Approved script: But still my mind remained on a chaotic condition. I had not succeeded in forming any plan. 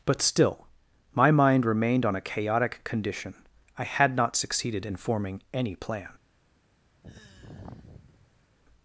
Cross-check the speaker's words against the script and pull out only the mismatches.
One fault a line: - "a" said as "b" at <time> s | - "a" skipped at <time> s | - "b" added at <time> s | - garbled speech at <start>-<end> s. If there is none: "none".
none